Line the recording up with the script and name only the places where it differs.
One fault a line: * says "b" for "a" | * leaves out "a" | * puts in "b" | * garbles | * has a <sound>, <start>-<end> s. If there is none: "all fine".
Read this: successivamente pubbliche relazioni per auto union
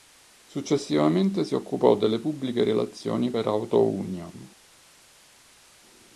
* puts in "si occupò delle"